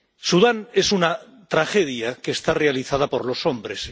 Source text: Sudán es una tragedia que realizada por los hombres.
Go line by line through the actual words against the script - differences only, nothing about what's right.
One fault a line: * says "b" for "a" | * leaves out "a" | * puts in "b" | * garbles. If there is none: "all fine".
* puts in "está"